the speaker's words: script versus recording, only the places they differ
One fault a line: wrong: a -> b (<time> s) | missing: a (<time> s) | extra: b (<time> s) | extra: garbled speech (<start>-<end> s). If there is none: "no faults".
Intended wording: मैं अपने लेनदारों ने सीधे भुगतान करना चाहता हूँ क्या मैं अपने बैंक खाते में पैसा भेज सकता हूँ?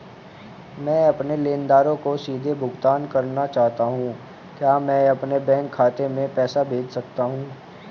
wrong: ने -> को (2.0 s)